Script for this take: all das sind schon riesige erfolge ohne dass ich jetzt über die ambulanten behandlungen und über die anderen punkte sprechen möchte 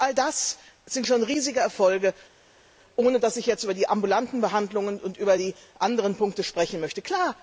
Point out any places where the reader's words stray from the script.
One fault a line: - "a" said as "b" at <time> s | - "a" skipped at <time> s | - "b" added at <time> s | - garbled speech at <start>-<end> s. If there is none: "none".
none